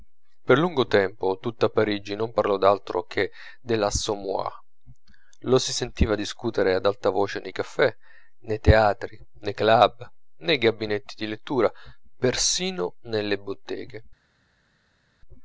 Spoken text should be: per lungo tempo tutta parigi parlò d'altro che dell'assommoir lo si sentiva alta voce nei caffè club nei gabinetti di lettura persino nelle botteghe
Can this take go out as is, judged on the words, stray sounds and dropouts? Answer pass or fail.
fail